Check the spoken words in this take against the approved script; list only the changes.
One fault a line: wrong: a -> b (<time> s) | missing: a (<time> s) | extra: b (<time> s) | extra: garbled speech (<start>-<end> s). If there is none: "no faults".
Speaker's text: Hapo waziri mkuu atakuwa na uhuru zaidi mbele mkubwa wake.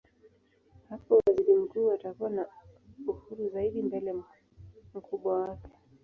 no faults